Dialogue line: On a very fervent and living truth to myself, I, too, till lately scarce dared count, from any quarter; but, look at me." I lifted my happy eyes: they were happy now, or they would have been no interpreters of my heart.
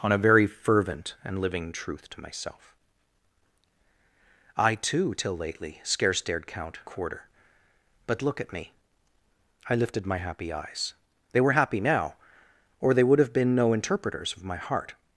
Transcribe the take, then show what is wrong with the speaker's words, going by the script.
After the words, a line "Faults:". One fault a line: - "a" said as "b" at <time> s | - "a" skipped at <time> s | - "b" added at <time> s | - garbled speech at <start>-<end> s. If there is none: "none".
On a very fervent and living truth to myself, I, too, till lately scarce dared count, quarter; but, look at me." I lifted my happy eyes: they were happy now, or they would have been no interpreters of my heart.
Faults:
- "from any" skipped at 6.8 s